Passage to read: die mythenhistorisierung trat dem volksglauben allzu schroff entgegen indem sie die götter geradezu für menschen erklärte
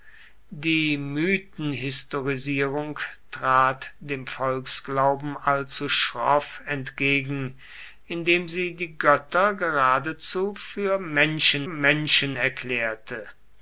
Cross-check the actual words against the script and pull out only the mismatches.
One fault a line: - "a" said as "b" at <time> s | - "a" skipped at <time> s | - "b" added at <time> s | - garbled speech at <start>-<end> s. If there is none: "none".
- "menschen" added at 11.6 s